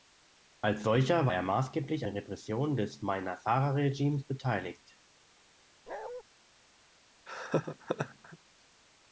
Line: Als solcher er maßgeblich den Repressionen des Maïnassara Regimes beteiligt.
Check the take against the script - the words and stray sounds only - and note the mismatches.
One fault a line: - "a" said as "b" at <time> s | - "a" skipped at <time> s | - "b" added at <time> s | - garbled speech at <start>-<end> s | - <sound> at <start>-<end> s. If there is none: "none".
- bark at 5.9-6.2 s
- laugh at 7.3-8.4 s